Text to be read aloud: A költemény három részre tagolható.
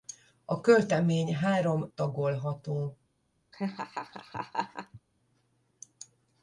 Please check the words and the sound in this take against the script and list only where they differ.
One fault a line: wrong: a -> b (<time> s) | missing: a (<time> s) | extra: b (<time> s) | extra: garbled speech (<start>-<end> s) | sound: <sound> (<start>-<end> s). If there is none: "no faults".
missing: részre (1.9 s)
sound: laugh (3.5-5.0 s)